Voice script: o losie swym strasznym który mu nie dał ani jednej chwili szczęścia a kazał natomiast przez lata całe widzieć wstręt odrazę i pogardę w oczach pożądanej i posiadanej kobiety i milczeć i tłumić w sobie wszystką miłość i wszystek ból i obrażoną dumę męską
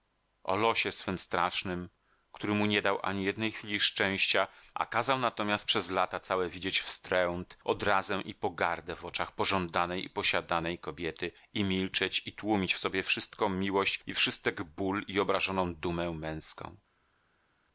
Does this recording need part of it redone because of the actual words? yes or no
no